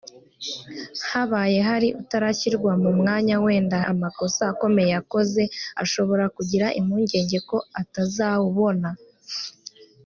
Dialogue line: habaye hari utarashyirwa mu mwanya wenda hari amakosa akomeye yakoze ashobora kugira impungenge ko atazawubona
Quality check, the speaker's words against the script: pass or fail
fail